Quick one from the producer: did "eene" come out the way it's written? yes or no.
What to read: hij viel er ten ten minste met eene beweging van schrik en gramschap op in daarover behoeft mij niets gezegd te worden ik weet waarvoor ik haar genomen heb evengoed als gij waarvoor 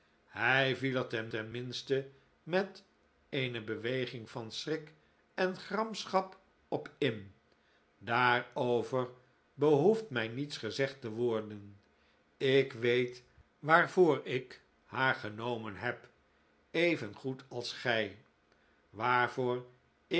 yes